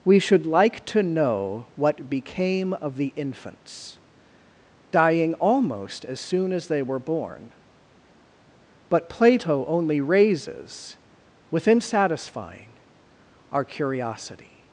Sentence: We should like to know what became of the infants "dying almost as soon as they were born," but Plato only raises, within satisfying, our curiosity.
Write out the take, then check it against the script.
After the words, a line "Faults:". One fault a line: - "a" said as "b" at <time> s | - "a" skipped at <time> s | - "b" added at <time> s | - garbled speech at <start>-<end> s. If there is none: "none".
We should like to know what became of the infants "dying almost as soon as they were born," but Plato only raises, within satisfying, our curiosity.
Faults:
none